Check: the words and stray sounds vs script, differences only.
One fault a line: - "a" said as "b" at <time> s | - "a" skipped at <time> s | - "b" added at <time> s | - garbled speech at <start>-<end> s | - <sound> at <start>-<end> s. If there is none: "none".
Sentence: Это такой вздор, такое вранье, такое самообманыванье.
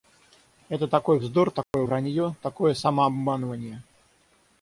- dropout at 1.6-1.7 s